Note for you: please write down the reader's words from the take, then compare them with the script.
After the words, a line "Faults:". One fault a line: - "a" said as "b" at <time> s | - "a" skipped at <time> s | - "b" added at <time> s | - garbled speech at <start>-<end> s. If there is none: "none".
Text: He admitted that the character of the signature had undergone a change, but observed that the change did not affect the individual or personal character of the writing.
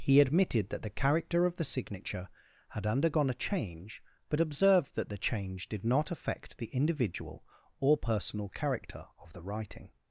He admitted that the character of the signature had undergone a change, but observed that the change did not affect the individual or personal character of the writing.
Faults:
none